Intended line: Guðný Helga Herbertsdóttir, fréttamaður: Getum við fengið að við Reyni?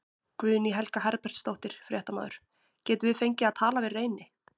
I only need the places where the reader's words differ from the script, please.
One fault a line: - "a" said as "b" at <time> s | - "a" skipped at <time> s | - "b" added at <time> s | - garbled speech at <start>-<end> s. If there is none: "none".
- "tala" added at 3.6 s